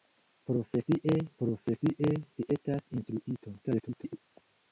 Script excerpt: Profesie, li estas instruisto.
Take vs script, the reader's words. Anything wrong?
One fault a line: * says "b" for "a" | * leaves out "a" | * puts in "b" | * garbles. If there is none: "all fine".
* puts in "profesie"
* garbles